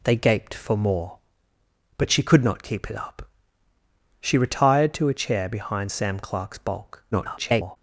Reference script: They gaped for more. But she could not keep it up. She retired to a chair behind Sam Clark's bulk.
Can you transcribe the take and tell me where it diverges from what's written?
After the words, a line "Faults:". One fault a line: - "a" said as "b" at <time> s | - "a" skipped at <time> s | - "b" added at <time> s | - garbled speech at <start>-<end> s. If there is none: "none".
They gaped for more. But she could not keep it up. She retired to a chair behind Sam Clark's bulk. [garbled]
Faults:
- garbled speech at 7.1-7.8 s